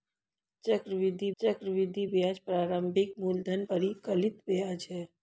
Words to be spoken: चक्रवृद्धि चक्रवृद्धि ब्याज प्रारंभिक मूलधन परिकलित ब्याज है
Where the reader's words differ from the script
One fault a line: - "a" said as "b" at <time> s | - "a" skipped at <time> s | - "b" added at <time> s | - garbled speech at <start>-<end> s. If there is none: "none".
none